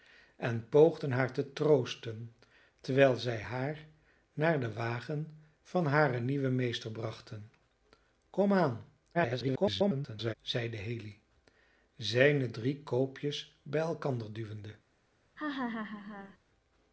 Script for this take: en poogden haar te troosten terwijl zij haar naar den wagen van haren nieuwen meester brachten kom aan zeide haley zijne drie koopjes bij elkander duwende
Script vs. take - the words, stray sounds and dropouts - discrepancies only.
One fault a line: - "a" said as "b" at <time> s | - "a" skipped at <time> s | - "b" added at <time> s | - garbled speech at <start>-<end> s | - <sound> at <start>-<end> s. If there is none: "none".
- garbled speech at 9.1-10.3 s
- laugh at 15.4-16.4 s